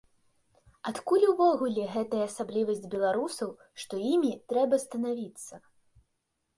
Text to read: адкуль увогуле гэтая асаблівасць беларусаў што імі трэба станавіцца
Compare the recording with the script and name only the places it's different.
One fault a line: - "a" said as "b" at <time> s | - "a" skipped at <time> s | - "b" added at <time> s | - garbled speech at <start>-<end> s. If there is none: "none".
none